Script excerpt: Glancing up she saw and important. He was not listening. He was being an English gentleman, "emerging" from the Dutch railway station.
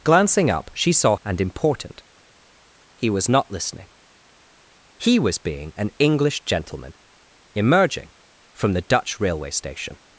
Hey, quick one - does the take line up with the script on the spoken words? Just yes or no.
yes